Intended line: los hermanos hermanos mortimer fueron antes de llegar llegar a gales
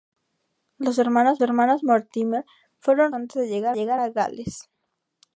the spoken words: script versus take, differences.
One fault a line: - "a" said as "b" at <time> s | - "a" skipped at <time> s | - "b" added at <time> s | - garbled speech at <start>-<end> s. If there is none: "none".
none